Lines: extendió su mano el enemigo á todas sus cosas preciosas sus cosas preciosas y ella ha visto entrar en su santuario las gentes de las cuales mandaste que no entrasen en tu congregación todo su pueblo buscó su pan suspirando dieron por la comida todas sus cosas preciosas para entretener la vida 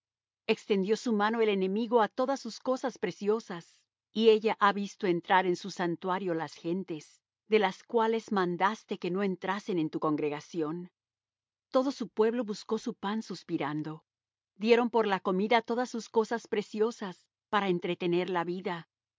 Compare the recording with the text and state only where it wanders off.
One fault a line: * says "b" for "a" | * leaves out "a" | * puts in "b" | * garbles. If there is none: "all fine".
* leaves out "sus cosas preciosas"